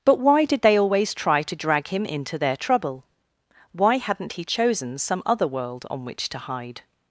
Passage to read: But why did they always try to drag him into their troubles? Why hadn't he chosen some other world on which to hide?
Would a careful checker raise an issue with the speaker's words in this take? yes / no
yes